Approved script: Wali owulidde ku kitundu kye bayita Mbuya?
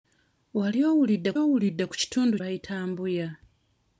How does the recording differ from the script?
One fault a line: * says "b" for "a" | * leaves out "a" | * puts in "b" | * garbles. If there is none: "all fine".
* puts in "owulidde"
* leaves out "kye"